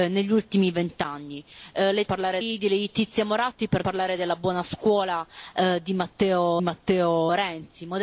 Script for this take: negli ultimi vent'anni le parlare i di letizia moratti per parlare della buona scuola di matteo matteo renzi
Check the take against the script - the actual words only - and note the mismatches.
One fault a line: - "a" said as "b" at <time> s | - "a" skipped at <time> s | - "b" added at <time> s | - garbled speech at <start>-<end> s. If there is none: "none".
none